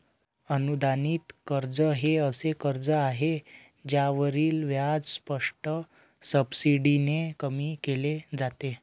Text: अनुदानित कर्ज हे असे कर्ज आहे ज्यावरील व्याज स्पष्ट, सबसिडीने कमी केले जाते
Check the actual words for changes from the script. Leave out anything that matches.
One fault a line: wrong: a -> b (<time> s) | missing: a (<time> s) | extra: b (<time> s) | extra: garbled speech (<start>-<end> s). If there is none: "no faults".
no faults